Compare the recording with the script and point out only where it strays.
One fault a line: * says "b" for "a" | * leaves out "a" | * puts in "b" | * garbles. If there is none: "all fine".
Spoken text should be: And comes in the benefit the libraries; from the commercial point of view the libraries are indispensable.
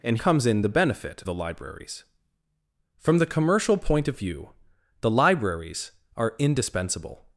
all fine